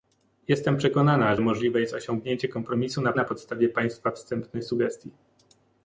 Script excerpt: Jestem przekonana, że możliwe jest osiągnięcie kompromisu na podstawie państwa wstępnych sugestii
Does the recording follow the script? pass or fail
fail